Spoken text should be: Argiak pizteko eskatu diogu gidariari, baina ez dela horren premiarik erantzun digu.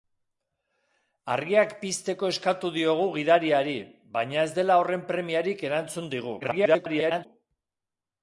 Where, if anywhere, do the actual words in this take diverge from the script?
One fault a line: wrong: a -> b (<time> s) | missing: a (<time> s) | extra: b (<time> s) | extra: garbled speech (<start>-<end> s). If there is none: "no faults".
extra: garbled speech (6.4-7.3 s)